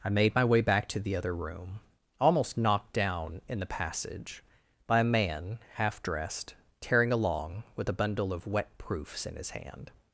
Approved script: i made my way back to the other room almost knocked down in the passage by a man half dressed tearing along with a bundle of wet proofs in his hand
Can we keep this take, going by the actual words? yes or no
yes